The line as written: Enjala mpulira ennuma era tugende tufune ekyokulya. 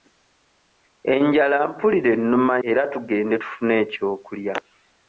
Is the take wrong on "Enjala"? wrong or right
right